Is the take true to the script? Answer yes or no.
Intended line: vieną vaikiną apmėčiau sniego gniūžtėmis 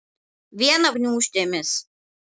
no